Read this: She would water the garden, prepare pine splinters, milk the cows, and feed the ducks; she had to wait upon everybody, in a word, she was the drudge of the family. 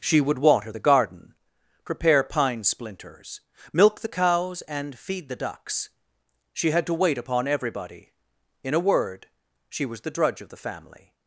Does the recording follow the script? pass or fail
pass